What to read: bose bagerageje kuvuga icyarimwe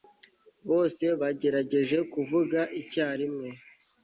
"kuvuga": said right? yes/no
yes